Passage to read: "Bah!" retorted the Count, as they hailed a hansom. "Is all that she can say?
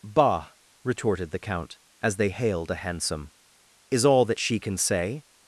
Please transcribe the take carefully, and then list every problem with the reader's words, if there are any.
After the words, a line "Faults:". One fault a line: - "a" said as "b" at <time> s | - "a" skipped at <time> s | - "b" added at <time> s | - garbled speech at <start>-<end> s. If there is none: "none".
"Bah!" retorted the Count, as they hailed a hansom. "Is all that she can say?
Faults:
none